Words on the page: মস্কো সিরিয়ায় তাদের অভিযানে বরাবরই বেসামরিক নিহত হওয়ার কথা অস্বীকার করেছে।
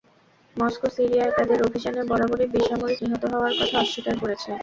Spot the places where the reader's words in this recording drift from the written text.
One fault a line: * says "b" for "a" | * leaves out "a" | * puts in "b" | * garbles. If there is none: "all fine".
all fine